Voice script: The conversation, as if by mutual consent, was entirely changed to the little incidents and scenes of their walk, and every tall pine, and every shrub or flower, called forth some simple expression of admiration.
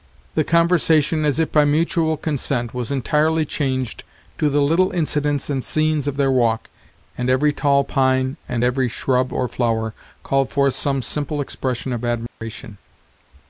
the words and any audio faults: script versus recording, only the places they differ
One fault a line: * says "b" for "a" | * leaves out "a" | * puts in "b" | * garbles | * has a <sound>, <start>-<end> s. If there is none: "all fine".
* has a dropout, 12.3-12.4 s